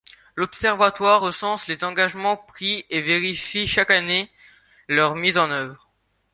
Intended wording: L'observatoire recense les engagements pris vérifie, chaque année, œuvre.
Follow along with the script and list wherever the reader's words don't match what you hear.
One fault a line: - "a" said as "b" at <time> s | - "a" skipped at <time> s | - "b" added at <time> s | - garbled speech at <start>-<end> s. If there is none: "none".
- "et" added at 2.9 s
- "leur mise en" added at 4.9 s